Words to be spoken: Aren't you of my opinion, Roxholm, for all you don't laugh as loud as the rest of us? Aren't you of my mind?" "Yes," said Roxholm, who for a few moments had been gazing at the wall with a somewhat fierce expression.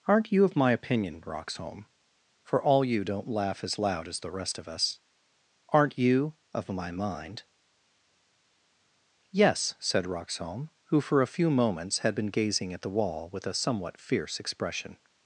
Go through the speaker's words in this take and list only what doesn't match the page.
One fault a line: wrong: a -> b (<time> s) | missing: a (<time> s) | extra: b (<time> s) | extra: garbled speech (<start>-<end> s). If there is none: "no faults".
no faults